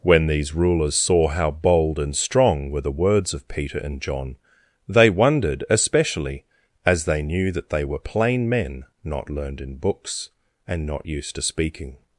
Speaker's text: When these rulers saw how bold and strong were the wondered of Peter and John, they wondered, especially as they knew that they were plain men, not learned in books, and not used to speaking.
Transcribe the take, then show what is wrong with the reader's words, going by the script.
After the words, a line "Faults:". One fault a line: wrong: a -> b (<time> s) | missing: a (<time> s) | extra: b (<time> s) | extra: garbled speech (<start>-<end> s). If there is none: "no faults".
When these rulers saw how bold and strong were the words of Peter and John, they wondered, especially as they knew that they were plain men, not learned in books, and not used to speaking.
Faults:
wrong: wondered -> words (3.0 s)